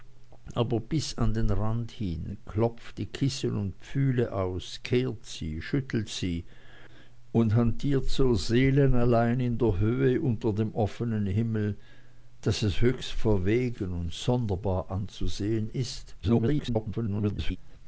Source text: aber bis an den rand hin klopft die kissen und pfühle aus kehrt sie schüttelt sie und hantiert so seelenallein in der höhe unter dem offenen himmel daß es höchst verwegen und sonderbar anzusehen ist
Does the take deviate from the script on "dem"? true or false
false